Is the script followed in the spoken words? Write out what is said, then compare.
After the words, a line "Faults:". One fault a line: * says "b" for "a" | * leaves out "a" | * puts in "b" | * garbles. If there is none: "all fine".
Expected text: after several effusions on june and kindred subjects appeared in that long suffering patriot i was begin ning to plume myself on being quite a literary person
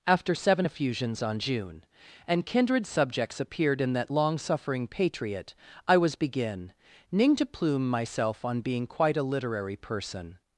after seven effusions on june and kindred subjects appeared in that long suffering patriot i was begin ning to plume myself on being quite a literary person
Faults:
* says "seven" for "several"